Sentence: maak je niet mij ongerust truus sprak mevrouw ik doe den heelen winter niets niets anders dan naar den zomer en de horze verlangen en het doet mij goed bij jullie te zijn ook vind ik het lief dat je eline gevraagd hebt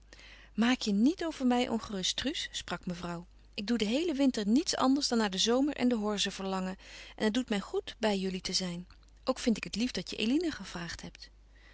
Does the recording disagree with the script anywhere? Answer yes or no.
yes